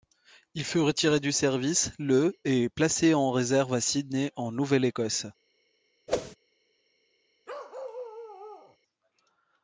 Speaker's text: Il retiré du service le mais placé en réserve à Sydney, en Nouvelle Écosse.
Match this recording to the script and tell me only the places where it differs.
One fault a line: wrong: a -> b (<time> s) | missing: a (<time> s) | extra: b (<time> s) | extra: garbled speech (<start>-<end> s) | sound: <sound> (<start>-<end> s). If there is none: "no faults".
extra: fut (0.7 s)
wrong: mais -> et (2.4 s)
sound: whoosh (6.1-6.4 s)
sound: bark (7.5-8.8 s)